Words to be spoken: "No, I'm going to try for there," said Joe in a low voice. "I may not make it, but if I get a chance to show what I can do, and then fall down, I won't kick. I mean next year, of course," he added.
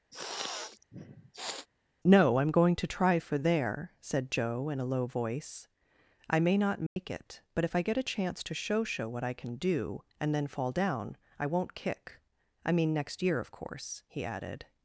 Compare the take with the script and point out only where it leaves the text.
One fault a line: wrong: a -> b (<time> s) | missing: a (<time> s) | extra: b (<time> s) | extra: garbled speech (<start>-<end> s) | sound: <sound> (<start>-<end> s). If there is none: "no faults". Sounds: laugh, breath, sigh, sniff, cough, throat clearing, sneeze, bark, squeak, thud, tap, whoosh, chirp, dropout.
sound: sniff (0.1-1.7 s)
sound: dropout (6.9-7.0 s)
extra: show (8.8 s)